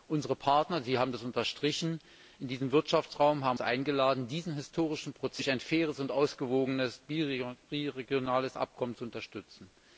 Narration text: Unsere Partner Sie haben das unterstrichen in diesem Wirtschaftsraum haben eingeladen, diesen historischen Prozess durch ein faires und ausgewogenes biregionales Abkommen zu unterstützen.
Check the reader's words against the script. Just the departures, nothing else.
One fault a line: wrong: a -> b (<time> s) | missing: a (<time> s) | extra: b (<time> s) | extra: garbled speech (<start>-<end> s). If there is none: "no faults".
no faults